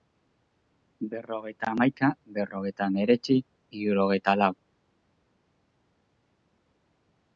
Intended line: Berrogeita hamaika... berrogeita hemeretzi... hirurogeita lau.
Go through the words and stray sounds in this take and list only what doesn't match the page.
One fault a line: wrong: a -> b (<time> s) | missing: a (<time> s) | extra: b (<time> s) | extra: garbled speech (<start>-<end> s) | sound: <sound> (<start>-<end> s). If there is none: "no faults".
no faults